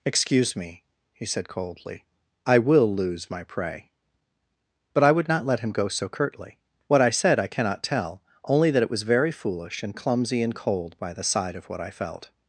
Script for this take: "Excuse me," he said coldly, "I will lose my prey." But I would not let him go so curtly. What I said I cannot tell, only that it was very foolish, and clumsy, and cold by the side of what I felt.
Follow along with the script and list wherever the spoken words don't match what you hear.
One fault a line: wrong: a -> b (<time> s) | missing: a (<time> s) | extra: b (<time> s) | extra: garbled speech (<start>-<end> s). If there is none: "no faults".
no faults